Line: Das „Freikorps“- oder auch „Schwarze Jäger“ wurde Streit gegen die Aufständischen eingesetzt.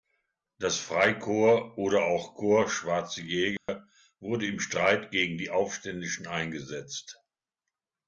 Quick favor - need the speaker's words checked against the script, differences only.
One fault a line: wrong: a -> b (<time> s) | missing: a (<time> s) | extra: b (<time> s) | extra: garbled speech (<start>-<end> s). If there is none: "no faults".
extra: Korps (2.3 s)
extra: im (4.5 s)